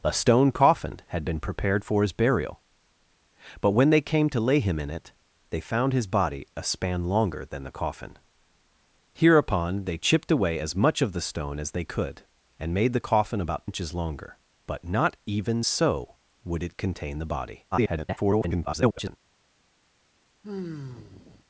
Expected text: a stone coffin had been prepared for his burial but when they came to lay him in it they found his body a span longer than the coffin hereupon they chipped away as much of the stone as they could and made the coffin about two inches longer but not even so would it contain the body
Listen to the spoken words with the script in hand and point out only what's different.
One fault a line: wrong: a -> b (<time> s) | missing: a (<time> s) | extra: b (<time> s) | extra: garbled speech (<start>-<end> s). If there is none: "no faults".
missing: two (13.7 s)
extra: garbled speech (17.7-19.2 s)